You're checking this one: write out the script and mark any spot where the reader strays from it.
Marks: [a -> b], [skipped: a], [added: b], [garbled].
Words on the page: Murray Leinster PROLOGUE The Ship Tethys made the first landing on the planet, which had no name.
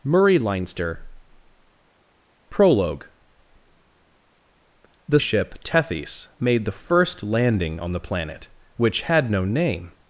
Murray Leinster PROLOGUE The Ship Tethys made the first landing on the planet, which had no name.